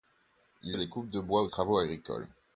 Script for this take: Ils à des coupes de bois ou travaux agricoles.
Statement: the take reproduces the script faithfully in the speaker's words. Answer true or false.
true